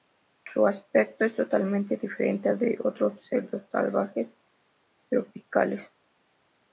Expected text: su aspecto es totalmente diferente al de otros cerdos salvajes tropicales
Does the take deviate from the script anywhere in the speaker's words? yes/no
no